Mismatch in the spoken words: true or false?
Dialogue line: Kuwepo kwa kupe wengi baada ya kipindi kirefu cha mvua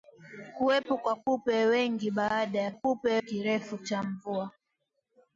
true